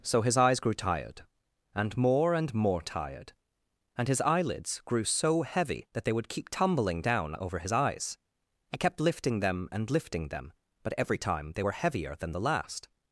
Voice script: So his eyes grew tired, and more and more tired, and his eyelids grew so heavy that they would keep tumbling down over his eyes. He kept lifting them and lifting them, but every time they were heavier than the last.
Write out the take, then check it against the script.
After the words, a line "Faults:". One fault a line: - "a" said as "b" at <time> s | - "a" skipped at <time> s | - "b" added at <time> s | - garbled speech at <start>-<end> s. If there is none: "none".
So his eyes grew tired, and more and more tired, and his eyelids grew so heavy that they would keep tumbling down over his eyes. He kept lifting them and lifting them, but every time they were heavier than the last.
Faults:
none